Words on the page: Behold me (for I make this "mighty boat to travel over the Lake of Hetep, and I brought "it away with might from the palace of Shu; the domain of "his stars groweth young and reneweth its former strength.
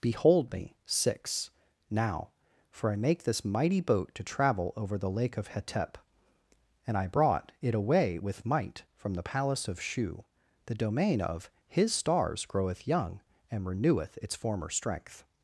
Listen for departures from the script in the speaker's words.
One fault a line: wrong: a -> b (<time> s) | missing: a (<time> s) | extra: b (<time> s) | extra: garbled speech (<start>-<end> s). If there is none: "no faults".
extra: six now (0.8 s)